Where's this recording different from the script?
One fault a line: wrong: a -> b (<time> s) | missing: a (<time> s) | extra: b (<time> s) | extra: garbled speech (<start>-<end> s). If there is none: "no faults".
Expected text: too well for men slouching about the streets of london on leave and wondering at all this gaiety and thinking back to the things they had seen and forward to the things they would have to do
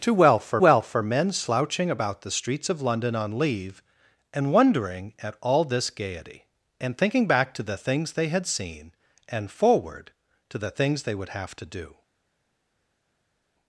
extra: well for (0.6 s)